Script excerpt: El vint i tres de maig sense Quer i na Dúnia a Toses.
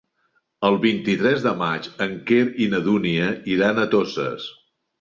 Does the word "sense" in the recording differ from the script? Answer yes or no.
yes